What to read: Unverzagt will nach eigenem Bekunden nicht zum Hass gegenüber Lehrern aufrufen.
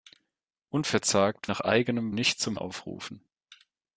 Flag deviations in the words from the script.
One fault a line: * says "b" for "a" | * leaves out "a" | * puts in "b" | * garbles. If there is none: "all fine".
* leaves out "will"
* leaves out "Bekunden"
* leaves out "Hass gegenüber Lehrern"